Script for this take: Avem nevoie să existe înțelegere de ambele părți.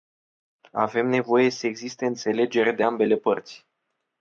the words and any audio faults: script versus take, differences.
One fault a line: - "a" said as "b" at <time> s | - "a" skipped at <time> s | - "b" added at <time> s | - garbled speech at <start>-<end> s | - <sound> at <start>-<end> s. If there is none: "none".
none